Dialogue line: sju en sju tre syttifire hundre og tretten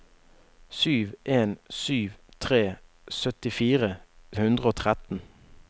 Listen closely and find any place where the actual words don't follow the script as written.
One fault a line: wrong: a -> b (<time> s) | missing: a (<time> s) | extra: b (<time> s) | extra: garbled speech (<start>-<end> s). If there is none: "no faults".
no faults